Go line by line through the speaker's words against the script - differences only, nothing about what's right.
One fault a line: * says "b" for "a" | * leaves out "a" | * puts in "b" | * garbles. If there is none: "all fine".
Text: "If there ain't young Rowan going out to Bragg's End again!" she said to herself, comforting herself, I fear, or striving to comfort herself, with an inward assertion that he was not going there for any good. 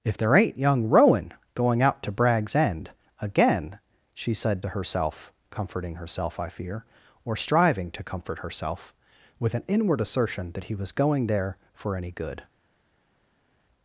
* leaves out "not"